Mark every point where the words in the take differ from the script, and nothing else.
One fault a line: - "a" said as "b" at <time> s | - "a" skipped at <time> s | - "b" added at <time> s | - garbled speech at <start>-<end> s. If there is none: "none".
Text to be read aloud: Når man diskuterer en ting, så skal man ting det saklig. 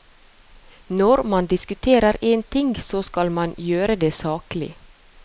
- "ting" said as "gjøre" at 3.6 s